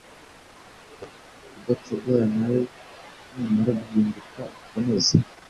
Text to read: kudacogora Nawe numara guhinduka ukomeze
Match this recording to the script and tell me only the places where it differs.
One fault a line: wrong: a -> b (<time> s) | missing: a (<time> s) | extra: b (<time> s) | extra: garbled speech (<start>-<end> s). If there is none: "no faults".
no faults